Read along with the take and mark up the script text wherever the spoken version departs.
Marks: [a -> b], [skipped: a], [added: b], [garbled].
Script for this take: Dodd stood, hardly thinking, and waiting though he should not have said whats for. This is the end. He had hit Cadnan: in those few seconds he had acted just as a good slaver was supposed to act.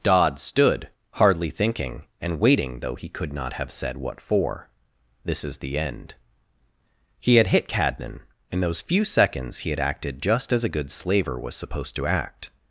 Dodd stood, hardly thinking, and waiting though he [should -> could] not have said [whats -> what] for. This is the end. He had hit Cadnan: in those few seconds he had acted just as a good slaver was supposed to act.